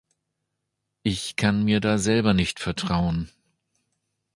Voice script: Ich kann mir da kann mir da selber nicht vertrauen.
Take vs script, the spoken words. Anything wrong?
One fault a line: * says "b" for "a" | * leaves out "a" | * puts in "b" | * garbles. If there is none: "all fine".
* leaves out "kann mir da"